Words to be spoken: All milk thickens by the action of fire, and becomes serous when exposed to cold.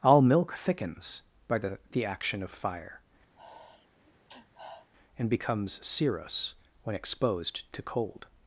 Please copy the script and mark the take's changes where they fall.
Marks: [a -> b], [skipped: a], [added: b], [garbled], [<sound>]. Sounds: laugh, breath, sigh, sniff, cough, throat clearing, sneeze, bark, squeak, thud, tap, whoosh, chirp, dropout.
All milk thickens by the [added: the] action of fire, [sniff] and becomes serous when exposed to cold.